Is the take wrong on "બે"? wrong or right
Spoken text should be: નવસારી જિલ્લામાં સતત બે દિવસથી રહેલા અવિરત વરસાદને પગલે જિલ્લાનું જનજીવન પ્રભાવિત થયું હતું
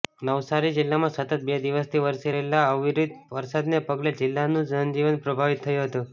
right